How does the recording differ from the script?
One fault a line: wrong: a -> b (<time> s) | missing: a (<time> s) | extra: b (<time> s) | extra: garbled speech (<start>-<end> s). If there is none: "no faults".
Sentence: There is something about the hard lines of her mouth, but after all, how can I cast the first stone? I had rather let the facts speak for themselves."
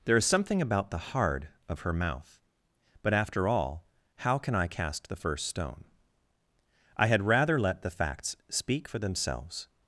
missing: lines (1.5 s)